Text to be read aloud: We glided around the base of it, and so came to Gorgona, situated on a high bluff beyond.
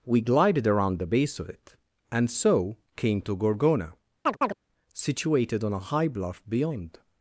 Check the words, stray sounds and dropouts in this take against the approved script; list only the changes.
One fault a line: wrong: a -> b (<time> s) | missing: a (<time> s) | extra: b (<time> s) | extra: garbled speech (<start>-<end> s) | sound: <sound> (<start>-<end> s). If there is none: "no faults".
sound: chirp (4.3-4.5 s)